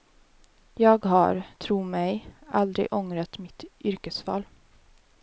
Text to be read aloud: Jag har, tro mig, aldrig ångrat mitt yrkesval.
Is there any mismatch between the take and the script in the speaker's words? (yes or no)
no